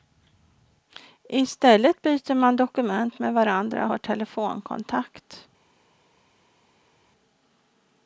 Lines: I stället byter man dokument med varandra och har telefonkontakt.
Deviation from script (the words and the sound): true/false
false